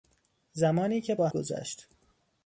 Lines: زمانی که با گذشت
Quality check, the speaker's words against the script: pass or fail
pass